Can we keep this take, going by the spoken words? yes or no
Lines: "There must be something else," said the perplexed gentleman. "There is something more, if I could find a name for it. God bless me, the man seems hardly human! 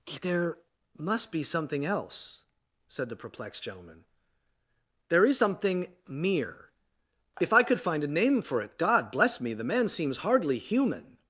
no